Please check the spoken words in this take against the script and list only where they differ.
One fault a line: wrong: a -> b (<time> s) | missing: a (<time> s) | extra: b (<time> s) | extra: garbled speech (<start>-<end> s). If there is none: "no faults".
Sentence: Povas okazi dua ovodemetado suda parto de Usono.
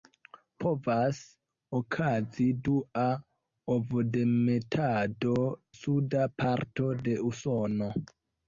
no faults